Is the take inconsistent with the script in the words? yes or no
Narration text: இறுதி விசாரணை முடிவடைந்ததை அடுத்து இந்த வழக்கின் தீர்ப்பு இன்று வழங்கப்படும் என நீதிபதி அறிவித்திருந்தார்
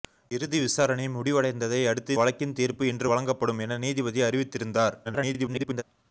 yes